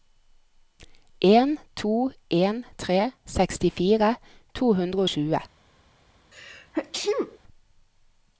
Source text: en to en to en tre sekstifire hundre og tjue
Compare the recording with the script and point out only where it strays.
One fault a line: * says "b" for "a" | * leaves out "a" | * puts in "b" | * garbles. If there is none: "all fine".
* leaves out "to en"
* puts in "to"